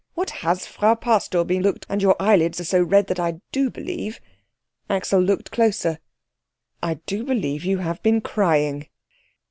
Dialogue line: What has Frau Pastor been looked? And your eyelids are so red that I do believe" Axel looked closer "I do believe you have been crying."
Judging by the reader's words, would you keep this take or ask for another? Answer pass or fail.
pass